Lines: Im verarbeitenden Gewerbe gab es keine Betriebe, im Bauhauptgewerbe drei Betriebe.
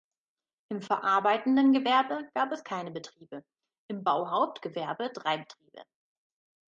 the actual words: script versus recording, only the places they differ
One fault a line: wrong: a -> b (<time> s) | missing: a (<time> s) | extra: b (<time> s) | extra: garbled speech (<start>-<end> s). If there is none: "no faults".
no faults